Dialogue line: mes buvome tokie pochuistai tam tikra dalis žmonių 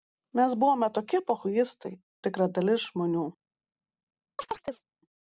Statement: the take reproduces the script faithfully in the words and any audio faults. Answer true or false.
false